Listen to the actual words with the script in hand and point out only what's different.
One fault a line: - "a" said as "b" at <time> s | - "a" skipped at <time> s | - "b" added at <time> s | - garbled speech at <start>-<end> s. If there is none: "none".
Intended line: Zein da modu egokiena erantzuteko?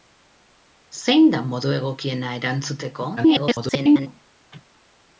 - garbled speech at 3.2-4.1 s